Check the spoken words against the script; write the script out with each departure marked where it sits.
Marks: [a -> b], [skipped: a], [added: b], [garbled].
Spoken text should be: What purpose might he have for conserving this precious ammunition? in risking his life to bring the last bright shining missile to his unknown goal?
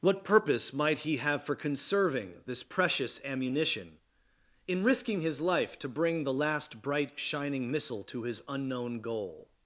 What purpose might he have for conserving this precious ammunition? in risking his life to bring the last bright shining missile to his unknown goal?